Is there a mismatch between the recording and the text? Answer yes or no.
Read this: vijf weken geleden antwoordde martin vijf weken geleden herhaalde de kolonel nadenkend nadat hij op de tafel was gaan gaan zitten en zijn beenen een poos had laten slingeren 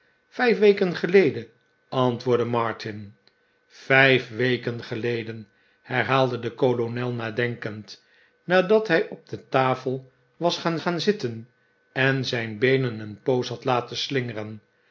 no